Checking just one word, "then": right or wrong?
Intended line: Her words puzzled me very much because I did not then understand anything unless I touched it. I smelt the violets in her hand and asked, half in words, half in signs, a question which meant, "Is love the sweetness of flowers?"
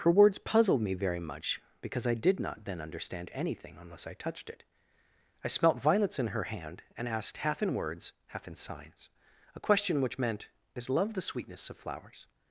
right